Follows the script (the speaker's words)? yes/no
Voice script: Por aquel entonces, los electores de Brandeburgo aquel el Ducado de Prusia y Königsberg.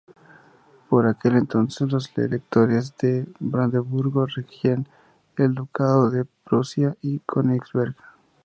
no